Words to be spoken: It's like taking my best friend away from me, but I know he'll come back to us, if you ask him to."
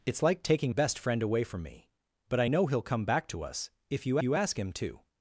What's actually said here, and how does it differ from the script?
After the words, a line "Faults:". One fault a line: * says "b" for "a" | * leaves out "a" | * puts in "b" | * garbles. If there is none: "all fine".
It's like taking best friend away from me, but I know he'll come back to us, if you you ask him to."
Faults:
* leaves out "my"
* puts in "you"